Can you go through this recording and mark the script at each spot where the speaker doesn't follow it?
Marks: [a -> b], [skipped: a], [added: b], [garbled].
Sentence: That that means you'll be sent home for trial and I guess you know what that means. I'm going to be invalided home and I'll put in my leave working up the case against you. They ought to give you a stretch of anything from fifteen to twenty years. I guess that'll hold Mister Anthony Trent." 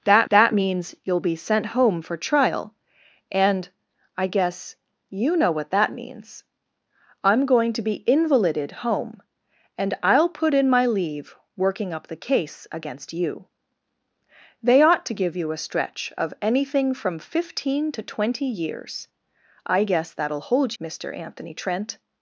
That that means you'll be sent home for trial and I guess you know what that means. I'm going to be invalided home and I'll put in my leave working up the case against you. They ought to give you a stretch of anything from fifteen to twenty years. I guess that'll hold Mister Anthony Trent."